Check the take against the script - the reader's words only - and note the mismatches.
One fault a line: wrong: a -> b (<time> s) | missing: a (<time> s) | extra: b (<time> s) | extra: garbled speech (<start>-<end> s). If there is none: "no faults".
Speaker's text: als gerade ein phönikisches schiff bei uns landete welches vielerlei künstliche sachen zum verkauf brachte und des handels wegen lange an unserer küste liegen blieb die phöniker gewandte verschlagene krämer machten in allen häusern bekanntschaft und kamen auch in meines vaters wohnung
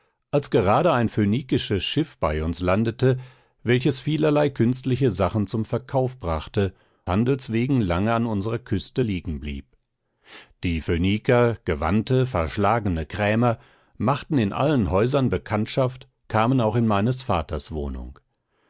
missing: und des (6.7 s)
missing: und (16.1 s)